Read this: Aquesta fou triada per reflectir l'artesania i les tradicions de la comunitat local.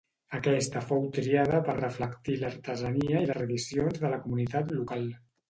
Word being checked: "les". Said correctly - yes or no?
no